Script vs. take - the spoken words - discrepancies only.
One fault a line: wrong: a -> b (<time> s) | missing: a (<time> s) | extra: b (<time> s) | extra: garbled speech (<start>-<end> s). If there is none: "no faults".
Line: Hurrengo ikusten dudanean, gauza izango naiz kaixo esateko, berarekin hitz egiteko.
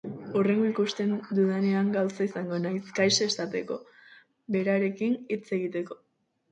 no faults